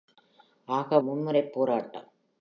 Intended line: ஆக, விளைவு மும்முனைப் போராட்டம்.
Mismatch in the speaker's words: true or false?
true